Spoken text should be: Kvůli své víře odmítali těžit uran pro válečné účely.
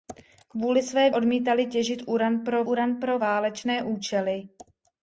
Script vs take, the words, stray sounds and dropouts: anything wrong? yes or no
yes